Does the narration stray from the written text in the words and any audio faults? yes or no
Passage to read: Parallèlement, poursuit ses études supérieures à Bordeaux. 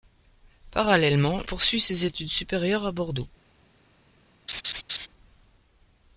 yes